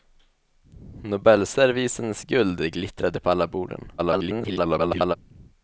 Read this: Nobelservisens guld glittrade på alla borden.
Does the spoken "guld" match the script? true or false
true